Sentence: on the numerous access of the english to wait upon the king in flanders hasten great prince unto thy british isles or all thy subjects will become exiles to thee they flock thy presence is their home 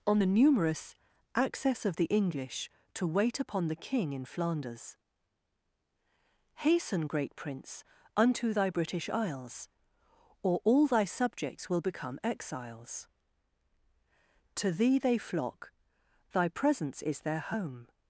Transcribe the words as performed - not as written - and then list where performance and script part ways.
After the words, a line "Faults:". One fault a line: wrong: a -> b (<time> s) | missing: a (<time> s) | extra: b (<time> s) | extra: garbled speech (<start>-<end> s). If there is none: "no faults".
on the numerous access of the english to wait upon the king in flanders hasten great prince unto thy british isles or all thy subjects will become exiles to thee they flock thy presence is their home
Faults:
no faults